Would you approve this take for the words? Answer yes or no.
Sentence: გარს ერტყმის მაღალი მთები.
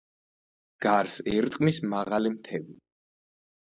yes